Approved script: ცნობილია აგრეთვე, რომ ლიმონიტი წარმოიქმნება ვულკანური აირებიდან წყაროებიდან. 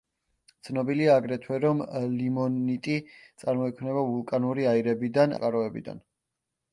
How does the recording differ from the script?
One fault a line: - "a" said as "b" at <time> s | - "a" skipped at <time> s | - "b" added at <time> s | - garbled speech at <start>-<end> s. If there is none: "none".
none